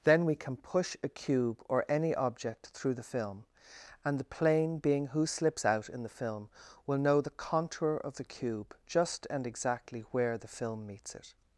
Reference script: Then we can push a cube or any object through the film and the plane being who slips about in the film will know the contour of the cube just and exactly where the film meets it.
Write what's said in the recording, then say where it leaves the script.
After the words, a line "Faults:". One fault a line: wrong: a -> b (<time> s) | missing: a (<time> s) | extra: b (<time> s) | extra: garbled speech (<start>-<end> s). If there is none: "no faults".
Then we can push a cube or any object through the film and the plane being who slips out in the film will know the contour of the cube just and exactly where the film meets it.
Faults:
wrong: about -> out (5.6 s)